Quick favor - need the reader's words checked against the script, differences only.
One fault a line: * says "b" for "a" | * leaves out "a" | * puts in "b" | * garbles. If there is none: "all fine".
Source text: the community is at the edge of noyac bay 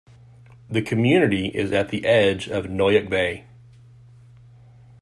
all fine